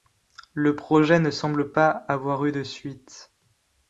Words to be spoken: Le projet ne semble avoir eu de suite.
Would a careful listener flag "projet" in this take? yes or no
no